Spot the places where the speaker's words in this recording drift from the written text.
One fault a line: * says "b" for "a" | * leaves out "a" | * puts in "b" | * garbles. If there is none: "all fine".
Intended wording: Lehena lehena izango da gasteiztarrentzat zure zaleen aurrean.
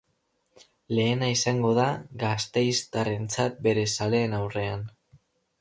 * leaves out "lehena"
* says "bere" for "zure"